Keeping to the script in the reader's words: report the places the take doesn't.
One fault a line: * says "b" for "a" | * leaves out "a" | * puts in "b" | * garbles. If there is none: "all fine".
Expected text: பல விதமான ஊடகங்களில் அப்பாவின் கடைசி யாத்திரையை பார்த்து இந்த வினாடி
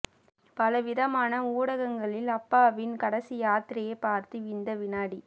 all fine